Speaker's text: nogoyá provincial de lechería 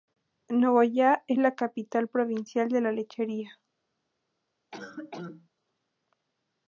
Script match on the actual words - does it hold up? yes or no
no